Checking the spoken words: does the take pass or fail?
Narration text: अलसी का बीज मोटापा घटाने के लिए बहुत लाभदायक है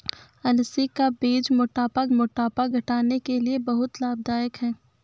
fail